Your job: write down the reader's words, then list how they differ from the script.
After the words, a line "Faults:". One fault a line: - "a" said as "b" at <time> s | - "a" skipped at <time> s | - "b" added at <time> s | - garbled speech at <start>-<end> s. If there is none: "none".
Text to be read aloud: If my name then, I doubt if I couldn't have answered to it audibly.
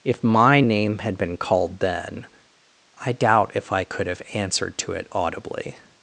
If my name had been called then, I doubt if I could have answered to it audibly.
Faults:
- "had been called" added at 1.0 s
- "couldn't" said as "could" at 3.8 s